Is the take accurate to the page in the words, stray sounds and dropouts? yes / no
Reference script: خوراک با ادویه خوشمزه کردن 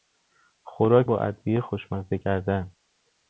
yes